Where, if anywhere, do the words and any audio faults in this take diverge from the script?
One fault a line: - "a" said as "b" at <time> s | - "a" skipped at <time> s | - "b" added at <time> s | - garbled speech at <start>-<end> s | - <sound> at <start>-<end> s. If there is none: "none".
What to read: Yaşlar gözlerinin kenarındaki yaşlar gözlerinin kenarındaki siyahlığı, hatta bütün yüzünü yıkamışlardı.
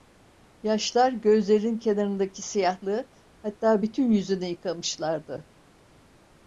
- "yaşlar gözlerinin kenarındaki" skipped at 2.4 s